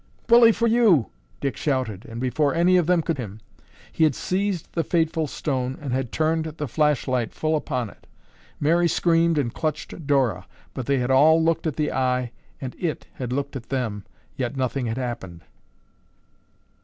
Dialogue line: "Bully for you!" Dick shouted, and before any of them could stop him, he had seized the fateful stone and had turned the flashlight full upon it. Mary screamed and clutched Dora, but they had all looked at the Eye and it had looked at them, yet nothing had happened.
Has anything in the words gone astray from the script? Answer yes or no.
yes